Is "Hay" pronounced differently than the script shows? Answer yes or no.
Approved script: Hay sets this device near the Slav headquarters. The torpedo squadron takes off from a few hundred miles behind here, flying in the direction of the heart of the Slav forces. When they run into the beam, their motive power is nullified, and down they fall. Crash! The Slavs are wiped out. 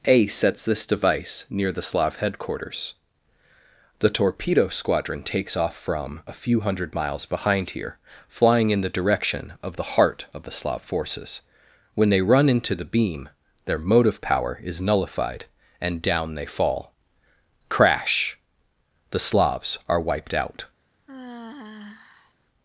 yes